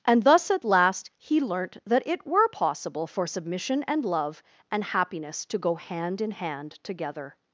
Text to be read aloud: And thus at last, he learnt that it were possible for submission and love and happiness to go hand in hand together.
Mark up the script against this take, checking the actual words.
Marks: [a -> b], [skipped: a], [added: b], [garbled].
And thus at last, he learnt that it were possible for submission and love and happiness to go hand in hand together.